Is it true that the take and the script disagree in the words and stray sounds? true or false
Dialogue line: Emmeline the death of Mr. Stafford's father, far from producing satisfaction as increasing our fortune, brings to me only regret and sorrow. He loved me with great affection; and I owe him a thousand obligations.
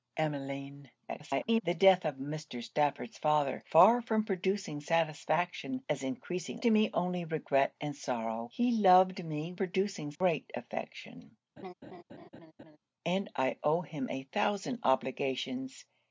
true